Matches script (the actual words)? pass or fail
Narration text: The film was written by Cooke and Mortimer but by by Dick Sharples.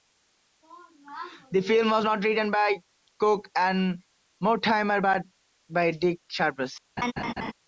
fail